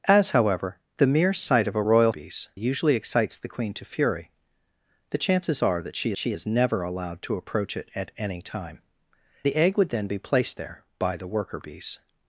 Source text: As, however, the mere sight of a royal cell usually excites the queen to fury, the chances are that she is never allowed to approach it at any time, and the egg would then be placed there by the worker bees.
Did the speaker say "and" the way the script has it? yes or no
no